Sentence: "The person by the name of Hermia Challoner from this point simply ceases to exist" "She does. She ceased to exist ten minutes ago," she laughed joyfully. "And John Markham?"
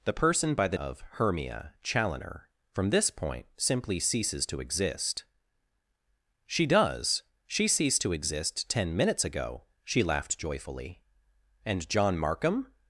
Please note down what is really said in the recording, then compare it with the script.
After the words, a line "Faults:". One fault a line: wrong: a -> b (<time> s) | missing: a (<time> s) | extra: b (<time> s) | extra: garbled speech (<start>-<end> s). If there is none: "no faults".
"The person by the of Hermia Challoner from this point simply ceases to exist" "She does. She ceased to exist ten minutes ago," she laughed joyfully. "And John Markham?"
Faults:
missing: name (0.8 s)